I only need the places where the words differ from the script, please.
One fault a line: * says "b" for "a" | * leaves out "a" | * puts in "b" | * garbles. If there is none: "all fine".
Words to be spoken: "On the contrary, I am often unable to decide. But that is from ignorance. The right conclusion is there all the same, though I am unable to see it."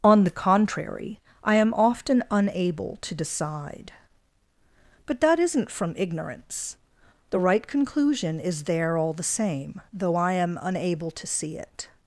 * says "isn't" for "is"